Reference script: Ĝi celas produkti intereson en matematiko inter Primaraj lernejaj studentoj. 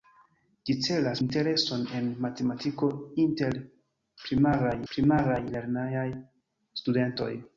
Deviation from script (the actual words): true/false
true